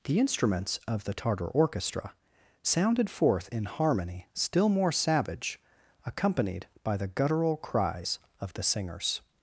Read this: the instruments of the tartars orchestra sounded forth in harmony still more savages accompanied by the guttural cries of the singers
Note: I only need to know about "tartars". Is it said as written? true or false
false